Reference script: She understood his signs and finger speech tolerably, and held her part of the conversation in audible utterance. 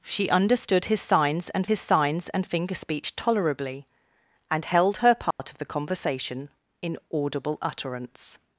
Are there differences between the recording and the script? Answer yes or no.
yes